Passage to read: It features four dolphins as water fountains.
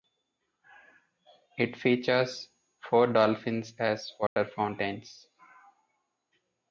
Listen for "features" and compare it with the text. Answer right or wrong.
right